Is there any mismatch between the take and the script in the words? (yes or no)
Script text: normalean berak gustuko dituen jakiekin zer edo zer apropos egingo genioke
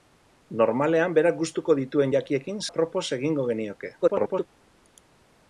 yes